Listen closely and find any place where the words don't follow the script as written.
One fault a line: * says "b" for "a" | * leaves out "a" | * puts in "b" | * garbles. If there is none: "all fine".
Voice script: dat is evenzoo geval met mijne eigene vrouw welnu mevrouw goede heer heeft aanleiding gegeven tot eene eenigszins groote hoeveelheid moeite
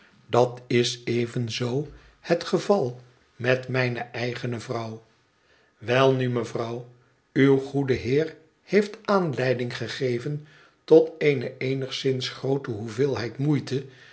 * puts in "het"
* puts in "uw"